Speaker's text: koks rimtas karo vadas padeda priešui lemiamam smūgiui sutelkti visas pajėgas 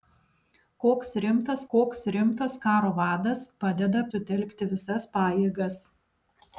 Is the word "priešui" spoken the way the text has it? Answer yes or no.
no